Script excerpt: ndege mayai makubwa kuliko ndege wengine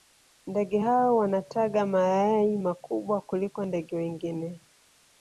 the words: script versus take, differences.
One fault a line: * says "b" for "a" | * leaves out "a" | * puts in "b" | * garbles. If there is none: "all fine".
* puts in "hao wanataga"